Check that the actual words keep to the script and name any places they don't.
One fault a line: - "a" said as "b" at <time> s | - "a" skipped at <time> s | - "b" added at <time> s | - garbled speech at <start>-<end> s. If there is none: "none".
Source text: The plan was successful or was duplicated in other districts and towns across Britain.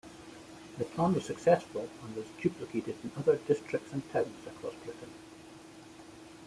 - "or" said as "and" at 2.0 s